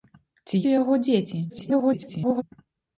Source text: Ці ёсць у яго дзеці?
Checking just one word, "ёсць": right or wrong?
wrong